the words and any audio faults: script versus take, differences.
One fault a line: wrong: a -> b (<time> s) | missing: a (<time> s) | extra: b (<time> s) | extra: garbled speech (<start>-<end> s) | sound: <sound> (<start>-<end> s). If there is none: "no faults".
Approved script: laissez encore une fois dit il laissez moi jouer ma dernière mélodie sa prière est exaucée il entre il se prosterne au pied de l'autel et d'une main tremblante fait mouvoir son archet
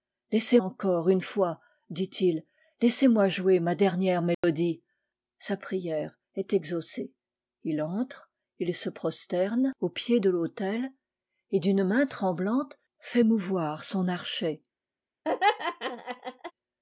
sound: dropout (4.3-4.4 s)
sound: laugh (15.2-16.5 s)